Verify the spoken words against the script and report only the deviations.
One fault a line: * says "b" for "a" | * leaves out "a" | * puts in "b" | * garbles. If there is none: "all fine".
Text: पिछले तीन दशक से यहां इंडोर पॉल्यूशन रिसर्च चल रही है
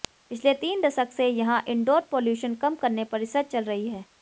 * puts in "कम करने पर"